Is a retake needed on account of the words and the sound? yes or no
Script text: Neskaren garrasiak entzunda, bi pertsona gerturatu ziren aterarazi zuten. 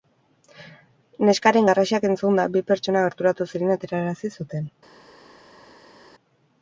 no